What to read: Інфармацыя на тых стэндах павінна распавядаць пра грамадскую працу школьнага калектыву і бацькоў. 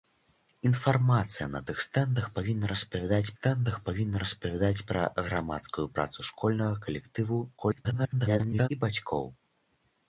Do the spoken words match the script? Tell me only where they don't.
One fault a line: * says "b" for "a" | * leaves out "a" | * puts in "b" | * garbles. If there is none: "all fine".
* puts in "стэндах павінна распавядаць"
* garbles